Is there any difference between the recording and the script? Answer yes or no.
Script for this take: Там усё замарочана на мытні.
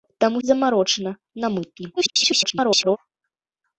yes